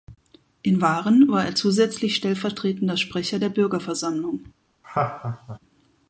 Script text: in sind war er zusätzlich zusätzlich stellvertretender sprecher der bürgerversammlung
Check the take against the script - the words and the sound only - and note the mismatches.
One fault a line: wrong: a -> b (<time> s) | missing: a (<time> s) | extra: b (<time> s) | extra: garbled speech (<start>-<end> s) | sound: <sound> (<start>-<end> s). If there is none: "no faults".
wrong: sind -> waren (0.8 s)
missing: zusätzlich (2.2 s)
sound: laugh (4.8-5.6 s)